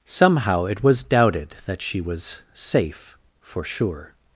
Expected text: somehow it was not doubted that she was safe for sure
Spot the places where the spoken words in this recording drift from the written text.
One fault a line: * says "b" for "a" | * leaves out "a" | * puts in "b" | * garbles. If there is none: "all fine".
* leaves out "not"